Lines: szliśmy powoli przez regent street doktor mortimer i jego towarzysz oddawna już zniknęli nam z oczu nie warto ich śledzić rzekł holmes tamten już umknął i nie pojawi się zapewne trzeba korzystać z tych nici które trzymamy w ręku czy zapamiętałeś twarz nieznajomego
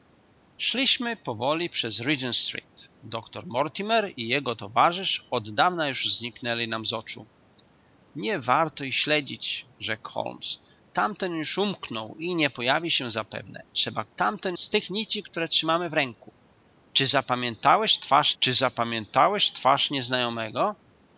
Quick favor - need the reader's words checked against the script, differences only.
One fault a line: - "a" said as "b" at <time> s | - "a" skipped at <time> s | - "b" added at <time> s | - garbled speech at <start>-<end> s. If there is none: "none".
- "korzystać" said as "tamten" at 14.2 s
- "czy zapamiętałeś twarz" added at 18.4 s